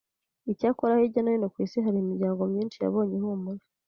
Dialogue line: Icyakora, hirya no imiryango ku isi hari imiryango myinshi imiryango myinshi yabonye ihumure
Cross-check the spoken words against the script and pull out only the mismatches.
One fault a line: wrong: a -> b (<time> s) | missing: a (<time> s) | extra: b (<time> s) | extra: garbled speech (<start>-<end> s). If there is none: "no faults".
wrong: imiryango -> hino (1.3 s)
missing: imiryango myinshi (2.8 s)